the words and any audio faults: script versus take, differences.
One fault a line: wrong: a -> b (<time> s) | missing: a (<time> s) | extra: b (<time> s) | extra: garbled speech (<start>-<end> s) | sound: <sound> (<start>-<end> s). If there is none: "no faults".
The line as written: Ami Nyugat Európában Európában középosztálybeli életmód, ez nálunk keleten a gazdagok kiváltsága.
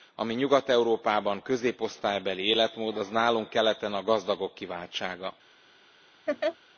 missing: Európában (1.4 s)
wrong: ez -> az (3.0 s)
sound: laugh (6.3-6.6 s)